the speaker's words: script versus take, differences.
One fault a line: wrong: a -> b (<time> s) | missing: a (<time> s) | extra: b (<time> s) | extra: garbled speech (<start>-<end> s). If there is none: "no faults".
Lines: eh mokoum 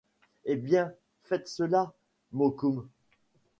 extra: bien faites cela (0.6 s)